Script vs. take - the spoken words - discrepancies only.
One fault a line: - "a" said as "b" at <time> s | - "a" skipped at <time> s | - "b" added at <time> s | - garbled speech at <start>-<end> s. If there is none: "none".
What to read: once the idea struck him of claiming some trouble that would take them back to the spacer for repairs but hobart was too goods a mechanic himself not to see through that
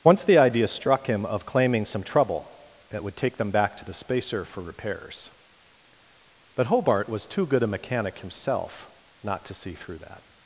- "goods" said as "good" at 7.5 s